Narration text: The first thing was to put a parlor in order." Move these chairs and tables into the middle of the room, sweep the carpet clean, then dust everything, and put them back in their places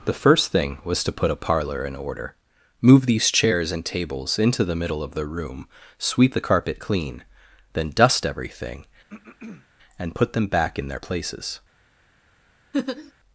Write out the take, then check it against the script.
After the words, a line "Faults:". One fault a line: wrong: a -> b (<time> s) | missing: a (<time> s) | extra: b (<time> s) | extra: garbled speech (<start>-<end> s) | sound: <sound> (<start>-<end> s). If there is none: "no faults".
The first thing was to put a parlor in order." Move these chairs and tables into the middle of the room, sweep the carpet clean, then dust everything, and put them back in their places
Faults:
sound: throat clearing (9.1-9.7 s)
sound: laugh (12.7-13.1 s)